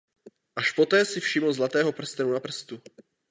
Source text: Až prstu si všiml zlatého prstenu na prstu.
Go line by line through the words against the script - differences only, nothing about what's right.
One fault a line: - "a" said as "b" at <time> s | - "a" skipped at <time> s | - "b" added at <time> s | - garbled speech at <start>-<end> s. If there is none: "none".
- "prstu" said as "poté" at 0.7 s